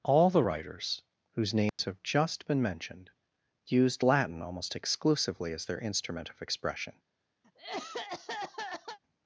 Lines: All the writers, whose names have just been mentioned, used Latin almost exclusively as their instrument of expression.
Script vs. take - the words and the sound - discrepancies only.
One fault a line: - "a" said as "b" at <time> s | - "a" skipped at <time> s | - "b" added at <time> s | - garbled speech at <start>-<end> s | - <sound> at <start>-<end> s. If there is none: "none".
- dropout at 1.7-1.8 s
- cough at 7.4-9.0 s